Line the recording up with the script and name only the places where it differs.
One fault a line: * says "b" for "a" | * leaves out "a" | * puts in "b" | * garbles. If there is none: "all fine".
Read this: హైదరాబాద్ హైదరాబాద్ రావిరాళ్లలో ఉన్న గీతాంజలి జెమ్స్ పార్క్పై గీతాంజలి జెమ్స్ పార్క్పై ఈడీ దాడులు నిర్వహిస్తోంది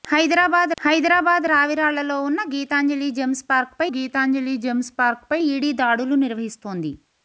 all fine